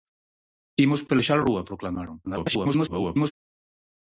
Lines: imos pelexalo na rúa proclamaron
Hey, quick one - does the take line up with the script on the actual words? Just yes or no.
no